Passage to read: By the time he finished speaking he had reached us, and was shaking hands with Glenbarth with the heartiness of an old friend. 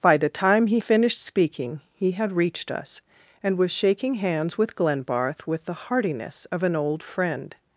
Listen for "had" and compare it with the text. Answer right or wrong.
right